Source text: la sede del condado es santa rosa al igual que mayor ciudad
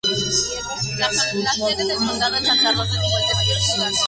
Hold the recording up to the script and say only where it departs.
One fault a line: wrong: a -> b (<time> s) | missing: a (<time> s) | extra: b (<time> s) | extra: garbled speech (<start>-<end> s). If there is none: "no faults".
no faults